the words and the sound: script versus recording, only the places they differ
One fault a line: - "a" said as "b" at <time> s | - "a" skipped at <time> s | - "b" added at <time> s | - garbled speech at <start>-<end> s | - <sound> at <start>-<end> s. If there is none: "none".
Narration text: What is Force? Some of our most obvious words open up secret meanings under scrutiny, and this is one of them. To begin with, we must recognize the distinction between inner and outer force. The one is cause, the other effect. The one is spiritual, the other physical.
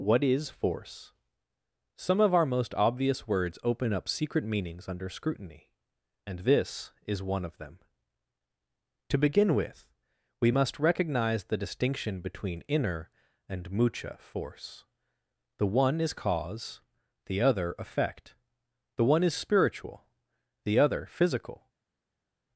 - "outer" said as "mucha" at 13.7 s